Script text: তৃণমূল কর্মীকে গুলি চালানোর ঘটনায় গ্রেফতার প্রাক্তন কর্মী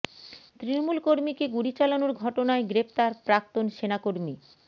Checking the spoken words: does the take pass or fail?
fail